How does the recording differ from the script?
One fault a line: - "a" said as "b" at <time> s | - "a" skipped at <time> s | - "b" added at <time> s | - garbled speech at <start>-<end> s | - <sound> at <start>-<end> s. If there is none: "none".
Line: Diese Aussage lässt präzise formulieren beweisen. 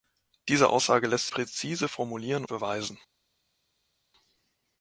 none